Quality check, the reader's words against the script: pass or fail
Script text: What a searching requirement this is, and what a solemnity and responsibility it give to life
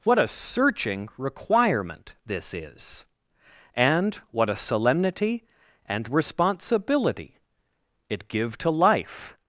pass